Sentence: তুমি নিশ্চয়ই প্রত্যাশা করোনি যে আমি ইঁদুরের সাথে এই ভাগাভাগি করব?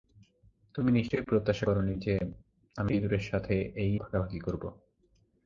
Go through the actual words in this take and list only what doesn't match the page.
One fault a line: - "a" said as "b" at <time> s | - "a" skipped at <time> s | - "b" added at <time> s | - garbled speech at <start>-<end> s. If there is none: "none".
none